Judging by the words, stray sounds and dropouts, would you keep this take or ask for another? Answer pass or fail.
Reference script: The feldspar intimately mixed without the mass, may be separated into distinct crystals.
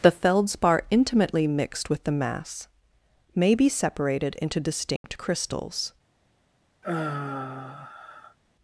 fail